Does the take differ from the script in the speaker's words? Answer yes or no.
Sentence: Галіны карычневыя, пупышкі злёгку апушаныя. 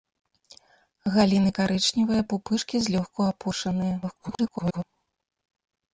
yes